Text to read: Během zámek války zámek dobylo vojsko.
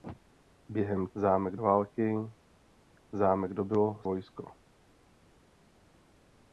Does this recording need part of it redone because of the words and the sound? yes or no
no